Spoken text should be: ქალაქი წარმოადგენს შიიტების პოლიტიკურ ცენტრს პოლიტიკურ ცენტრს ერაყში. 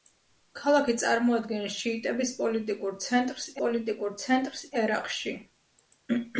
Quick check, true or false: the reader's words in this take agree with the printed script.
true